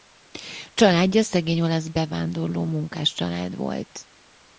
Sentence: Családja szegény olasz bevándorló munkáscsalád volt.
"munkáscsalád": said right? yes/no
yes